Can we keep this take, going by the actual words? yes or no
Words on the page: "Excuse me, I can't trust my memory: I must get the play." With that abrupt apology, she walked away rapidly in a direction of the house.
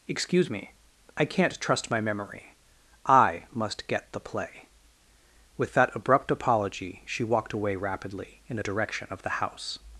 yes